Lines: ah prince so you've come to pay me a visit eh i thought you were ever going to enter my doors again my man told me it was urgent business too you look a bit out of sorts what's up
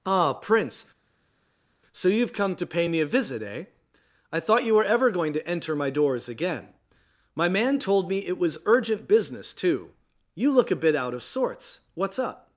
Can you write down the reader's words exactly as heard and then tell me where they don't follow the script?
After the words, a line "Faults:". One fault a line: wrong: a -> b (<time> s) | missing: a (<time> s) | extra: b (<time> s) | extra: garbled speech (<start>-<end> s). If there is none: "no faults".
ah prince so you've come to pay me a visit eh i thought you were ever going to enter my doors again my man told me it was urgent business too you look a bit out of sorts what's up
Faults:
no faults